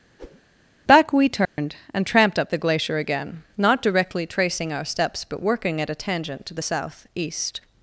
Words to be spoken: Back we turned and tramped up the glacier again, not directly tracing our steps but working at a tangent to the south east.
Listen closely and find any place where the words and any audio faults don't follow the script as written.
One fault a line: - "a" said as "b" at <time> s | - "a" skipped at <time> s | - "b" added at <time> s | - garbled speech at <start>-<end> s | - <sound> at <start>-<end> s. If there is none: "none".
- whoosh at 0.2-0.4 s
- dropout at 1.5-1.6 s